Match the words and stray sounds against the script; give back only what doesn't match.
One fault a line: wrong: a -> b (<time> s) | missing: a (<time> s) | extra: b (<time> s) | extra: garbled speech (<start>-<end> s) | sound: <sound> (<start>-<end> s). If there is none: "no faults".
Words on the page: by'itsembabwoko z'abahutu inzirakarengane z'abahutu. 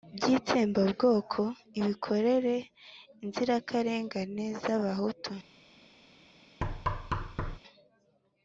wrong: z'abahutu -> ibikorera (1.8 s)
sound: thud (6.6-7.6 s)